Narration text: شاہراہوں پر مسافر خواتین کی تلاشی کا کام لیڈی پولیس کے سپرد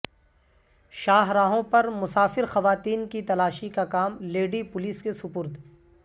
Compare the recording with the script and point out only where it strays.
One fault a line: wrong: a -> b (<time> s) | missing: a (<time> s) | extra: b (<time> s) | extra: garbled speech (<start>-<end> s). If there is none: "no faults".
no faults